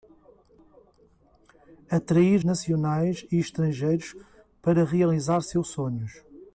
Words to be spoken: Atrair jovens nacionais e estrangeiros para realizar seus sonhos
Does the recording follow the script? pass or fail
fail